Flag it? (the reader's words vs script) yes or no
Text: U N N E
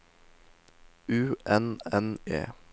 no